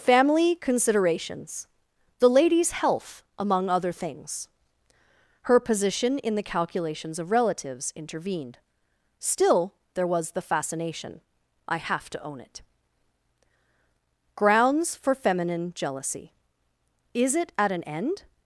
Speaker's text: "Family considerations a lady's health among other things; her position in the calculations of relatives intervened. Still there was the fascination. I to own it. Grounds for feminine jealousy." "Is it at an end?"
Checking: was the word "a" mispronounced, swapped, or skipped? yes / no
yes